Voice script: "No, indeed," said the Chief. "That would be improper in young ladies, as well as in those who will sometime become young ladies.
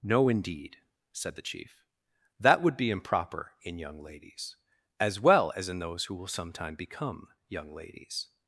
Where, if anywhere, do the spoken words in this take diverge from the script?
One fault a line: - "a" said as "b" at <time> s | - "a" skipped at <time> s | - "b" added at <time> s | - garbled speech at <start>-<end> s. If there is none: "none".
none